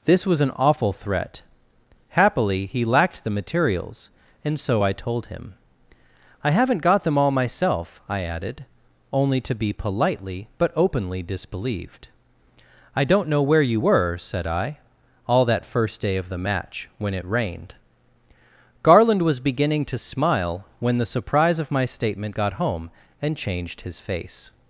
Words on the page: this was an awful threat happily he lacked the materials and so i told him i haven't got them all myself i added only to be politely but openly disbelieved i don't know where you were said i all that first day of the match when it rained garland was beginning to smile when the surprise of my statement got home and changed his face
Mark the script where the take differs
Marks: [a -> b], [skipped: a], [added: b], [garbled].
this was an awful threat happily he lacked the materials and so i told him i haven't got them all myself i added only to be politely but openly disbelieved i don't know where you were said i all that first day of the match when it rained garland was beginning to smile when the surprise of my statement got home and changed his face